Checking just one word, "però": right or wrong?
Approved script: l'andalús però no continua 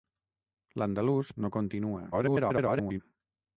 wrong